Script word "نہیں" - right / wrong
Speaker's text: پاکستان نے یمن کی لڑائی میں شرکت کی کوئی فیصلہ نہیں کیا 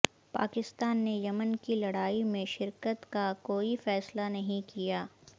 right